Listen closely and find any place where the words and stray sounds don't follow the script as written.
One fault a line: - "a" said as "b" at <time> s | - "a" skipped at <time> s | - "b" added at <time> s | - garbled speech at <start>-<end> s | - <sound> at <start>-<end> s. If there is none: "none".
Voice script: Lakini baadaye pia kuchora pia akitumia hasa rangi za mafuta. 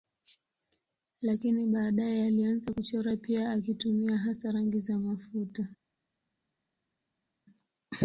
- "pia" said as "alianza" at 2.3 s